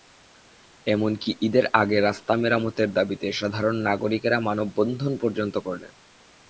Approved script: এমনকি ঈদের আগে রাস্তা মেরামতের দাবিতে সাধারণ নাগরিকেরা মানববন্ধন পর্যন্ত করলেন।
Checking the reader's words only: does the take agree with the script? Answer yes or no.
yes